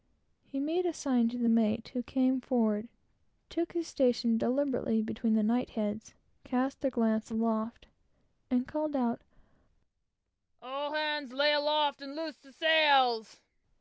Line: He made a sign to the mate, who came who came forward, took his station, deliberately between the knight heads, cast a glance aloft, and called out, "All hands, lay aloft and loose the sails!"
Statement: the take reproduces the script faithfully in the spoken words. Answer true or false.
false